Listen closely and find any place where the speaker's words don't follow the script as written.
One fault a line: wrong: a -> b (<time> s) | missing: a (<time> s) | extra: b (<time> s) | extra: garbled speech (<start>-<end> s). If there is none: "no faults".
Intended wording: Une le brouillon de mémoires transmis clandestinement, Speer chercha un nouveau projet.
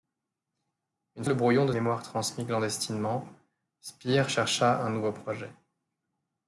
no faults